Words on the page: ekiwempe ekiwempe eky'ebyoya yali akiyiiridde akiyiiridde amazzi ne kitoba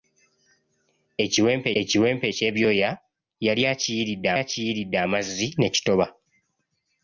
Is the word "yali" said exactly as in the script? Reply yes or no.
yes